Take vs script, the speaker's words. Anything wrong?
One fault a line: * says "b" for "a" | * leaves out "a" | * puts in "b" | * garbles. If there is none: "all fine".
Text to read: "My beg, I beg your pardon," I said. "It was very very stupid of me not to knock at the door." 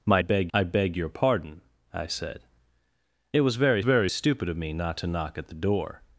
all fine